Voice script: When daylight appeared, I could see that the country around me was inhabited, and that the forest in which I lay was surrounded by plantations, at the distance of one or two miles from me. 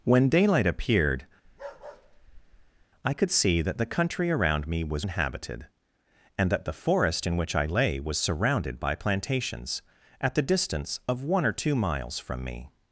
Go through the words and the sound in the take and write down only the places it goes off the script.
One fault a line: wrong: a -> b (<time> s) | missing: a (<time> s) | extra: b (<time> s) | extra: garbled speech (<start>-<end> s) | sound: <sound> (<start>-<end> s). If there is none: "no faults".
sound: bark (1.4-2.9 s)